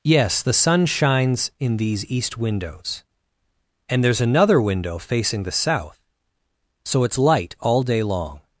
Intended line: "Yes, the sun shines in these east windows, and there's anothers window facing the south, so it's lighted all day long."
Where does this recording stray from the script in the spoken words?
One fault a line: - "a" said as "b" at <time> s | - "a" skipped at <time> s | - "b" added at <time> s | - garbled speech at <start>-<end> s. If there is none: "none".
- "anothers" said as "another" at 4.2 s
- "lighted" said as "light" at 7.2 s